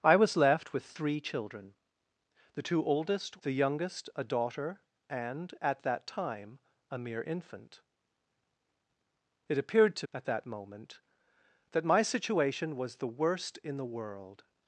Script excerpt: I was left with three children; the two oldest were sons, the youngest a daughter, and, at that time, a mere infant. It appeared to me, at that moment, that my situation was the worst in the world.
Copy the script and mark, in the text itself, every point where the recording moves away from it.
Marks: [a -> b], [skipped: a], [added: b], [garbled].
I was left with three children; the two oldest [skipped: were sons,] the youngest a daughter, and, at that time, a mere infant. It appeared to [skipped: me,] at that moment, that my situation was the worst in the world.